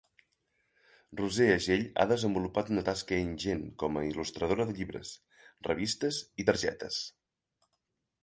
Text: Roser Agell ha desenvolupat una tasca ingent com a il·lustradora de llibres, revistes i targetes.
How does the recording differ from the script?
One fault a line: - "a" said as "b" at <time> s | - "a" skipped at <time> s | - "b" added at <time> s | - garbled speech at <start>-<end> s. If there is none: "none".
none